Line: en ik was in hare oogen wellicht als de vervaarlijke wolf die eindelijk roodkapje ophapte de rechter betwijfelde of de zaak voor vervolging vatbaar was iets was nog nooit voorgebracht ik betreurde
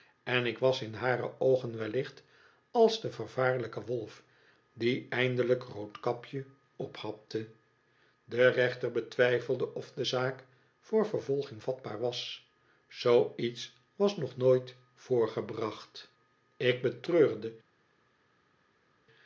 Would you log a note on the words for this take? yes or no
yes